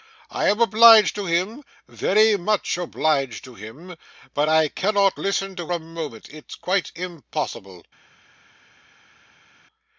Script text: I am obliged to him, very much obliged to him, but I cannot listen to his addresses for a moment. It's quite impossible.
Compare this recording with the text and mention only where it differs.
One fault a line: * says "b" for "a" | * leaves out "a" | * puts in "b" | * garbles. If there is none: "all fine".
* leaves out "his addresses for"